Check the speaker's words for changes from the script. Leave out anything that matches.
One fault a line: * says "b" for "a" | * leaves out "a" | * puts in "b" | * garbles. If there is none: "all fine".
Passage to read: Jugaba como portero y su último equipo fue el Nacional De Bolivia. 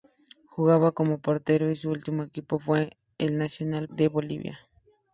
all fine